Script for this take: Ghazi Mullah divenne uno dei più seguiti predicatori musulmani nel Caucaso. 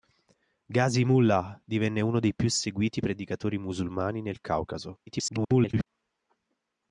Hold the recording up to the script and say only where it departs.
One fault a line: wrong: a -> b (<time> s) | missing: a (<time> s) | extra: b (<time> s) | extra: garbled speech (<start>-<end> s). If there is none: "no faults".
extra: garbled speech (5.1-5.9 s)